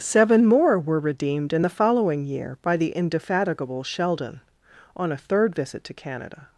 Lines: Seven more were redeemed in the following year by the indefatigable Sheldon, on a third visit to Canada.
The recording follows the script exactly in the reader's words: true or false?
true